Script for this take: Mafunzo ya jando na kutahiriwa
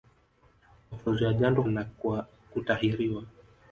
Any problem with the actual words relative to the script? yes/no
no